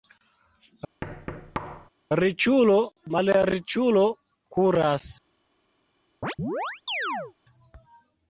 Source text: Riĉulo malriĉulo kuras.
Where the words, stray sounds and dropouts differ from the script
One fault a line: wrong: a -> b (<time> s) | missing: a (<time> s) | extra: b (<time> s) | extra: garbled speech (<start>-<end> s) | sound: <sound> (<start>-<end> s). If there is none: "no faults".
sound: thud (1.0-1.9 s)
sound: chirp (6.2-7.3 s)